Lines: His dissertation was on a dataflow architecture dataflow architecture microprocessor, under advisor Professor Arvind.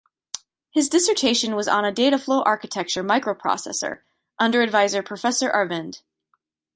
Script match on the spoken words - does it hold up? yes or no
no